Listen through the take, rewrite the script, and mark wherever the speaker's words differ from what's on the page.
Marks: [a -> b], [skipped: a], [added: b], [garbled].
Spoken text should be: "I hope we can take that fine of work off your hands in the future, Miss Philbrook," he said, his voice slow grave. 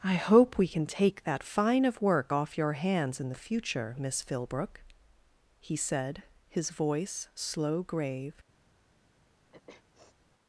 "I hope we can take that fine of work off your hands in the future, Miss Philbrook," he said, his voice slow grave.